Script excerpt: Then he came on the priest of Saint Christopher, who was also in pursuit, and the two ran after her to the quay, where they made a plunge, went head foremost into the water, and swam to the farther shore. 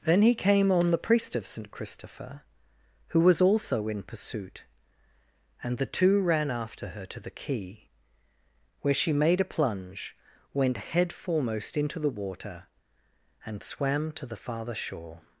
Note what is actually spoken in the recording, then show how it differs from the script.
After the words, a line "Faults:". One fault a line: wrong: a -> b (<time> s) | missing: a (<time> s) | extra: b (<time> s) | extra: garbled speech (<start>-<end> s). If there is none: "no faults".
Then he came on the priest of Saint Christopher, who was also in pursuit, and the two ran after her to the quay, where she made a plunge, went head foremost into the water, and swam to the farther shore.
Faults:
wrong: they -> she (8.9 s)